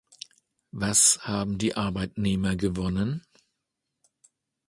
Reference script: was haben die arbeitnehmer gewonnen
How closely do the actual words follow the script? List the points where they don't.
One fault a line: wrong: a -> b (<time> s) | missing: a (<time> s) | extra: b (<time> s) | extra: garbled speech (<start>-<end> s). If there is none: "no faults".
no faults